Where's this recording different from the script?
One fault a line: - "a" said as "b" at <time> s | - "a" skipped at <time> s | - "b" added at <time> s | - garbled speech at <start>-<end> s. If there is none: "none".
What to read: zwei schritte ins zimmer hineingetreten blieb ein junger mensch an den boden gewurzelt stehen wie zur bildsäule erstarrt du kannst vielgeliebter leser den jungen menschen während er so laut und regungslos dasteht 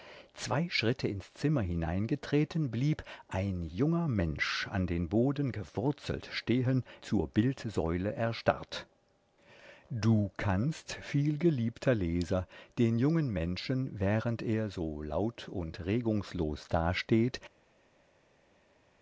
- "wie" skipped at 6.8 s